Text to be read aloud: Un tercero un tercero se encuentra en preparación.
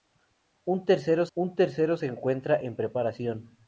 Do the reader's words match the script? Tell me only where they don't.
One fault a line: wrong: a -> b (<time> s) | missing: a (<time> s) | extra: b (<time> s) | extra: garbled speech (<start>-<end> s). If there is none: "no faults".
no faults